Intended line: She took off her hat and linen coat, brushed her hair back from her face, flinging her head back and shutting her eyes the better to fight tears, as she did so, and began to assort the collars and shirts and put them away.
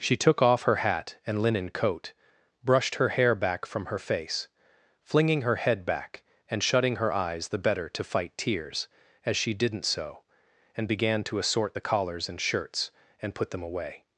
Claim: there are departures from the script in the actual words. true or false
true